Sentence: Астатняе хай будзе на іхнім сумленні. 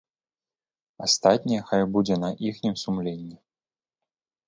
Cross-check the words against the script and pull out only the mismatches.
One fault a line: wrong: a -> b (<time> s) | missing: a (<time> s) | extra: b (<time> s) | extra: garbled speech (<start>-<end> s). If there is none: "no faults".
no faults